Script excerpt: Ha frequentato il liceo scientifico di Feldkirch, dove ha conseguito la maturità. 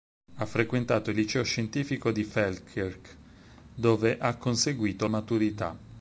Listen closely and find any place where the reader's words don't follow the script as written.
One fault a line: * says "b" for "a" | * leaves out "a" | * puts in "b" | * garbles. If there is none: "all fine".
* leaves out "la"